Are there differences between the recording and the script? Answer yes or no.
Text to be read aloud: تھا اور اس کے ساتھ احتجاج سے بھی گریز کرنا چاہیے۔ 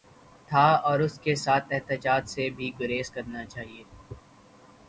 no